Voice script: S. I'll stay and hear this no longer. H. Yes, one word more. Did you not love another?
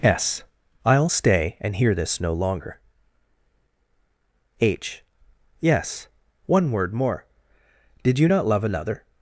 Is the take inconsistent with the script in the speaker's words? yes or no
no